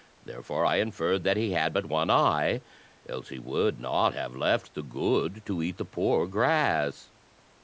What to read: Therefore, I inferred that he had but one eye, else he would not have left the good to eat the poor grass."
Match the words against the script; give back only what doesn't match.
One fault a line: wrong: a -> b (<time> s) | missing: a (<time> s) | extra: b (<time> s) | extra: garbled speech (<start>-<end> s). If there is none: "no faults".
no faults